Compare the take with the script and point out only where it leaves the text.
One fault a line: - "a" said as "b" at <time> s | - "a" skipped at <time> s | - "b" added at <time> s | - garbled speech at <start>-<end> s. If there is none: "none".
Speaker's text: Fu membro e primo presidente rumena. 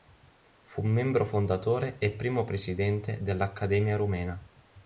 - "fondatore" added at 1.3 s
- "dell'Accademia" added at 3.2 s